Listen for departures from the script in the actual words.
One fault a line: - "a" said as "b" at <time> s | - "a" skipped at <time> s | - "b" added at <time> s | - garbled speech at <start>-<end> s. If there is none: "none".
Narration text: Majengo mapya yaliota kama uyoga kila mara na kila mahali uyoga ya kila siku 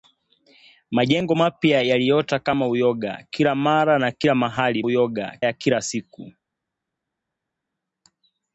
none